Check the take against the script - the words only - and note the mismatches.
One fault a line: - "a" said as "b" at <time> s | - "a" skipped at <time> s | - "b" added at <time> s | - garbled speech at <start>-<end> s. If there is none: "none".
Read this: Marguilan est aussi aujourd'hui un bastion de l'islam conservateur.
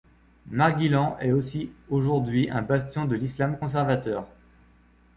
none